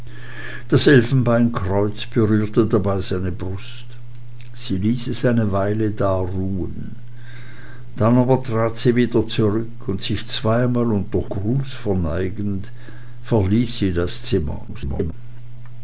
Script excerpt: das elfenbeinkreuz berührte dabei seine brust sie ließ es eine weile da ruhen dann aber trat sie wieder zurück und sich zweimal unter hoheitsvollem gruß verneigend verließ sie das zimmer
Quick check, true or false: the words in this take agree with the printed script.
false